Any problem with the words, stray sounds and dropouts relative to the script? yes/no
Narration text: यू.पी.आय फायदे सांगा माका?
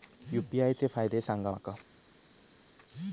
yes